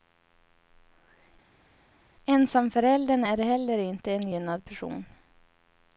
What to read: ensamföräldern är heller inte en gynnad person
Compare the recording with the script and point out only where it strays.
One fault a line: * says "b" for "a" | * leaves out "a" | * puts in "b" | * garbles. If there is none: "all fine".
all fine